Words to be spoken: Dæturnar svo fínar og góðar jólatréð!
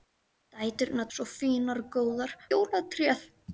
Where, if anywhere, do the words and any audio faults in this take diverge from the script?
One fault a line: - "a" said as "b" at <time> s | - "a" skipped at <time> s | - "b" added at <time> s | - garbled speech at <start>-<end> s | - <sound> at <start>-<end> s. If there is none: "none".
none